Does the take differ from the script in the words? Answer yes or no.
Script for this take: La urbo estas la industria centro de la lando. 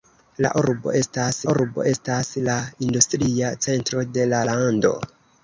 yes